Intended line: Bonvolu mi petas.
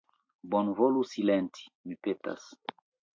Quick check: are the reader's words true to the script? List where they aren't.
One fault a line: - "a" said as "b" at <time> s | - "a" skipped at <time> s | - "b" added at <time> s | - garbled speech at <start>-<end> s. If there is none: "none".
- "silenti" added at 1.1 s